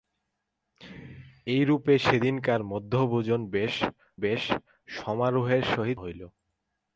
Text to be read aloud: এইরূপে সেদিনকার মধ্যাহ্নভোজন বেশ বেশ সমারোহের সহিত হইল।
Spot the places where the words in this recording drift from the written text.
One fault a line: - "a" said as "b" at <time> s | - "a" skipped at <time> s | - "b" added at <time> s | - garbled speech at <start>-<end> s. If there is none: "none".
none